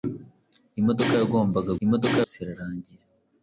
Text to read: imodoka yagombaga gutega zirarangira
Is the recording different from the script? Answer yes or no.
yes